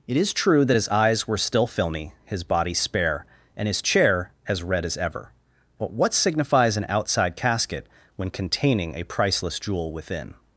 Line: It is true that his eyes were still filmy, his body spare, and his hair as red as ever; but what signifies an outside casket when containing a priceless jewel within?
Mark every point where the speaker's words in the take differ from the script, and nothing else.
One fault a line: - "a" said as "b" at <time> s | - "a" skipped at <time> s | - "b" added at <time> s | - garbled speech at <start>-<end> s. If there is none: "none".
- "hair" said as "chair" at 3.8 s